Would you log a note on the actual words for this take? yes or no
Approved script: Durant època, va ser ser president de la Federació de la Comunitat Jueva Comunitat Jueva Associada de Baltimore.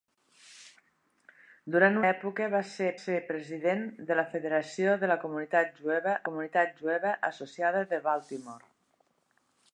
no